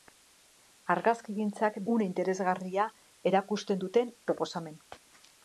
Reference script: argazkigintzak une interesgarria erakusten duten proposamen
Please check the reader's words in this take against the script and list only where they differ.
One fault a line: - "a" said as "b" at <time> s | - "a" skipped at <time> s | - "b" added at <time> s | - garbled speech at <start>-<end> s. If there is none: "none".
none